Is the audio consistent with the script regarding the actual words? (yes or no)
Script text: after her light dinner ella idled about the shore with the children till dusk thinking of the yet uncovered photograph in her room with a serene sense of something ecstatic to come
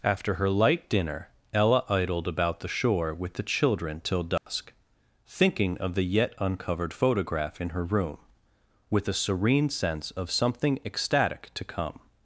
yes